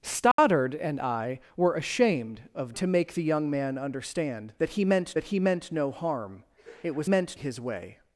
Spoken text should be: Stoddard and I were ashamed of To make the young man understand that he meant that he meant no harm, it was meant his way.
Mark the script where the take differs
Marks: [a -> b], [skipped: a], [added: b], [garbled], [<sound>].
Stoddard [dropout] and I were ashamed of To make the young man understand that he meant that he meant no harm, it was meant his way.